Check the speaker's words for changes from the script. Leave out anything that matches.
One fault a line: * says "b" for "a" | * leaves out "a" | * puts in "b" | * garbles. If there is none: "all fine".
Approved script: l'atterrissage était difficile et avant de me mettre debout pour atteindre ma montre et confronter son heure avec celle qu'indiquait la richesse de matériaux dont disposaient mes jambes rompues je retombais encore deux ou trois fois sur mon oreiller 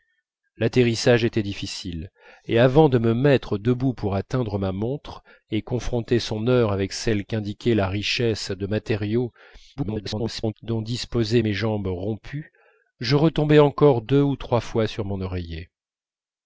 * garbles